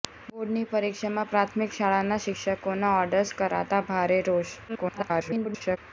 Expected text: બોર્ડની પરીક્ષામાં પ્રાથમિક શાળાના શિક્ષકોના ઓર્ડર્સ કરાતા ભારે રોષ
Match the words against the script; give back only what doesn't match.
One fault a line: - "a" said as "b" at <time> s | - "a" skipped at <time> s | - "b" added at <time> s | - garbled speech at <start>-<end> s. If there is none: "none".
- garbled speech at 4.7-5.8 s